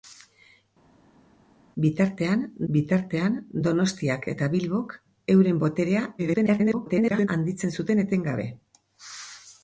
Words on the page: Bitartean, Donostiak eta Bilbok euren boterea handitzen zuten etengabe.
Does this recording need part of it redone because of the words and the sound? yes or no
yes